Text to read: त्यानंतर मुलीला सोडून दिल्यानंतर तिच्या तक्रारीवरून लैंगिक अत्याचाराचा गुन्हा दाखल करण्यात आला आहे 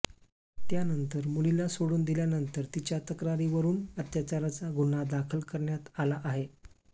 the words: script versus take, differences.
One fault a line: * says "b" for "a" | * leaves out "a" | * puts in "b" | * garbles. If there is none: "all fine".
* leaves out "लैंगिक"